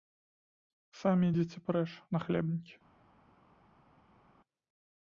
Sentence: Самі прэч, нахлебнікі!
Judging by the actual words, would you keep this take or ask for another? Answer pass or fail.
fail